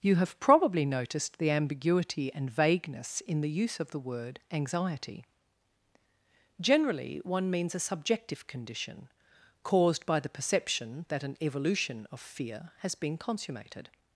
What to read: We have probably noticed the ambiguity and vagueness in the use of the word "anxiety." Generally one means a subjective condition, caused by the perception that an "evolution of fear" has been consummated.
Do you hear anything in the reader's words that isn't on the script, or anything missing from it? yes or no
yes